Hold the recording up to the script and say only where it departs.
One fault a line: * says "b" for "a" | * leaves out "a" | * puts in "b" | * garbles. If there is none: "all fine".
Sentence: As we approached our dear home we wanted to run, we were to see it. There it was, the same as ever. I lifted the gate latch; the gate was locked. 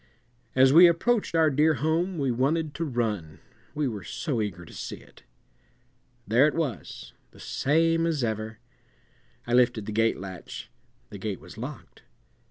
* puts in "so eager"